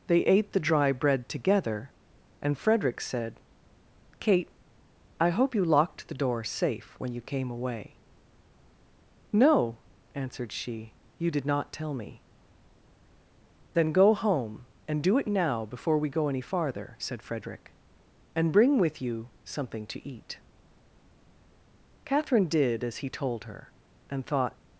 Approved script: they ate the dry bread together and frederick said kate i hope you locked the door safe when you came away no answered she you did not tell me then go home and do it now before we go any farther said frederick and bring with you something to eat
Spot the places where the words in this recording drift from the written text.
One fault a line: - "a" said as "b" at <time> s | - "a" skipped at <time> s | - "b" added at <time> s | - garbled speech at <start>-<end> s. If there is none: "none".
- "catherine did as he told her and thought" added at 22.0 s